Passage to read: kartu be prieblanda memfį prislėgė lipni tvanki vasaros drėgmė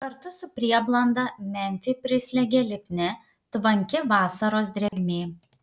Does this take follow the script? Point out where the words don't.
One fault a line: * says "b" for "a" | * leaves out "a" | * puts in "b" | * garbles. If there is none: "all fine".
* says "su" for "be"